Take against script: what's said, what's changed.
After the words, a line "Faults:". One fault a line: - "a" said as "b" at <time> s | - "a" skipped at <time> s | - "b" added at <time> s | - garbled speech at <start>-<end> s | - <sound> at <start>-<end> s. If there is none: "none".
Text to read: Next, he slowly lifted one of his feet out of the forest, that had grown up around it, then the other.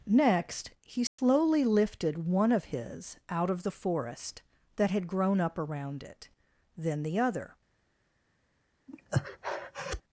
Next, he slowly lifted one of his out of the forest, that had grown up around it, then the other.
Faults:
- dropout at 1.1-1.2 s
- "feet" skipped at 3.2 s
- breath at 8.9-10.0 s